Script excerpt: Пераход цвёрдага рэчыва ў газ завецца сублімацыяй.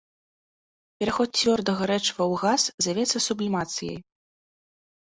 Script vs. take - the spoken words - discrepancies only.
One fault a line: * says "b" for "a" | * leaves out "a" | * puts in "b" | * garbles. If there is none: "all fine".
all fine